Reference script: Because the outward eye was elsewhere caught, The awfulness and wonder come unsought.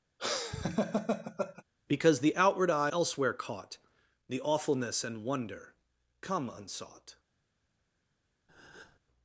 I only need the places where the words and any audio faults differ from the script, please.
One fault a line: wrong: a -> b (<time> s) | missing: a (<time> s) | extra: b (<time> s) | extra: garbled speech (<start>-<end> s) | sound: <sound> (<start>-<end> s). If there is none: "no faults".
sound: laugh (0.2-1.6 s)
missing: was (2.9 s)
sound: breath (8.5-9.0 s)